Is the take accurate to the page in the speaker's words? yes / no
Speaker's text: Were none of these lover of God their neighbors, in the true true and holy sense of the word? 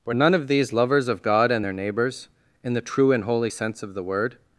no